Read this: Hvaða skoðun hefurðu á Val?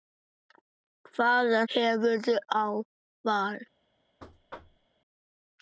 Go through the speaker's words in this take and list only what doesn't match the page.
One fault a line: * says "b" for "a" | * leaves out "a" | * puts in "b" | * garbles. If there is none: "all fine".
* leaves out "skoðun"